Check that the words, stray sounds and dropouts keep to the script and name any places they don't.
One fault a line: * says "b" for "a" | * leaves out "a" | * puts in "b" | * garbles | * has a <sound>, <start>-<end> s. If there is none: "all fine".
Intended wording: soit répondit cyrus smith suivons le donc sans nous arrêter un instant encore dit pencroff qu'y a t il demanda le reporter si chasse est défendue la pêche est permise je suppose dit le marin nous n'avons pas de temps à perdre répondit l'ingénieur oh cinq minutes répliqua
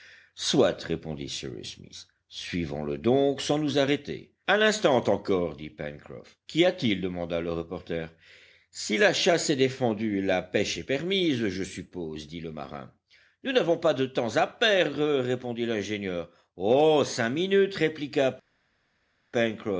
* puts in "la"